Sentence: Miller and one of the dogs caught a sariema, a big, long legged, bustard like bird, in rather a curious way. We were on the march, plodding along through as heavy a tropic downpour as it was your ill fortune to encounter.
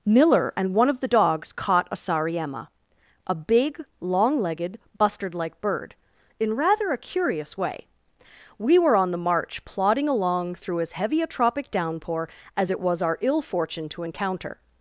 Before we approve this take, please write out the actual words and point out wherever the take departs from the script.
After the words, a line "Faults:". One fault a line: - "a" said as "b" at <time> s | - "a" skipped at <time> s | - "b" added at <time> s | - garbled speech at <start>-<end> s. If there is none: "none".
Miller and one of the dogs caught a sariema, a big, long legged, bustard like bird, in rather a curious way. We were on the march, plodding along through as heavy a tropic downpour as it was our ill fortune to encounter.
Faults:
- "your" said as "our" at 13.0 s